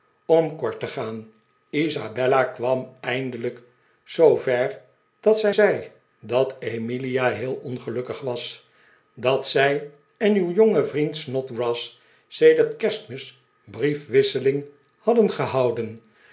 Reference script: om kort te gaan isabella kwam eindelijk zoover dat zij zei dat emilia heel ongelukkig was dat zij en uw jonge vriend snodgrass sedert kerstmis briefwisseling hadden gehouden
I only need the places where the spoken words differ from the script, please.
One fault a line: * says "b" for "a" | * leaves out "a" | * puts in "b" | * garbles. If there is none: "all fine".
all fine